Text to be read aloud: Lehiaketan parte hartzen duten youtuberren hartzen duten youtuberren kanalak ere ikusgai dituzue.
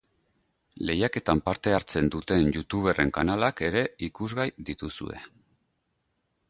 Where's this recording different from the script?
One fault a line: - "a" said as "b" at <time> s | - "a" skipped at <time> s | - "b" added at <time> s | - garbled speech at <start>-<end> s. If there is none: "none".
- "hartzen duten youtuberren" skipped at 3.1 s